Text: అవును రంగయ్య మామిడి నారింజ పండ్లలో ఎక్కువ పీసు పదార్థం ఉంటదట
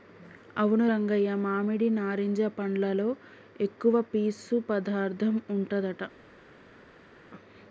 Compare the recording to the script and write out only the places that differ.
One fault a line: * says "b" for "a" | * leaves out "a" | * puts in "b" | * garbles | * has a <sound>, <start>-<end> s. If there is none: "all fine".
all fine